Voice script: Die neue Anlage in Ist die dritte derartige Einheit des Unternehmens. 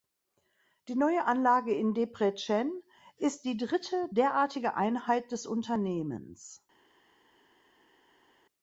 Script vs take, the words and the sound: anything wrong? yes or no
yes